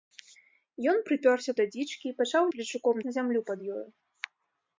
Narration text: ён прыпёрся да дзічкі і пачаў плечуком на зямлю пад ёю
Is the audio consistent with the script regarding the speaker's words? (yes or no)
yes